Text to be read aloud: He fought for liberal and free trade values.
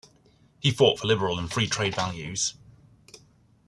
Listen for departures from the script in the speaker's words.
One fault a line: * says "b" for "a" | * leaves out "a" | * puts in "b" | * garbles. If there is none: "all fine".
all fine